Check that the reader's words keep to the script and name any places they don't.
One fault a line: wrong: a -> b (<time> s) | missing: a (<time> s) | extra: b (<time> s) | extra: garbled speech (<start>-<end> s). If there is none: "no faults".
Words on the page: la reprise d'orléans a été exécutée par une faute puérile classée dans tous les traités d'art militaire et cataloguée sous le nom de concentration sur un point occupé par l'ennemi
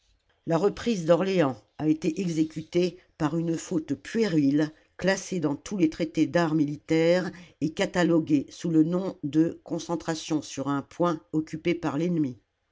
no faults